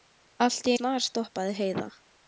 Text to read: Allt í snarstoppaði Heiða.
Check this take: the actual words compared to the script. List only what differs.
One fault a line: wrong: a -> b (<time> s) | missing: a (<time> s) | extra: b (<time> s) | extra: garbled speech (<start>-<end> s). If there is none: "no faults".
no faults